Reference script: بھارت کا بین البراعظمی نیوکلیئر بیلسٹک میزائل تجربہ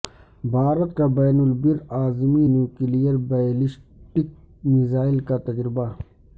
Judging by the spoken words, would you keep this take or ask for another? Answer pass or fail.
fail